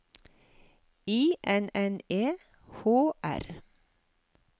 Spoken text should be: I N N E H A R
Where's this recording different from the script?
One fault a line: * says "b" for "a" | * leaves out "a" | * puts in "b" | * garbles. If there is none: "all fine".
* leaves out "A"